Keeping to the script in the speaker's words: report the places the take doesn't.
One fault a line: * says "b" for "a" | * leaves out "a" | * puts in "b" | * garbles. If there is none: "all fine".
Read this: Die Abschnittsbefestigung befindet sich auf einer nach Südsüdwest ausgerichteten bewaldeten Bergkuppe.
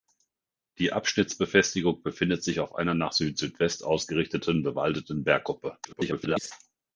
* garbles